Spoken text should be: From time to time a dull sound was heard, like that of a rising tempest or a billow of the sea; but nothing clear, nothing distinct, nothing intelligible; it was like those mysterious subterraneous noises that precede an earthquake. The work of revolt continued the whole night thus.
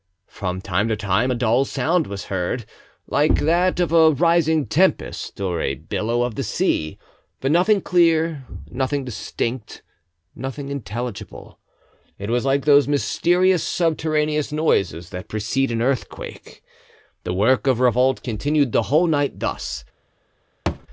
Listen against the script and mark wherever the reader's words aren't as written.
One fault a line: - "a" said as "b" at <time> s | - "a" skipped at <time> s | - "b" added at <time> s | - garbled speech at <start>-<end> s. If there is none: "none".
none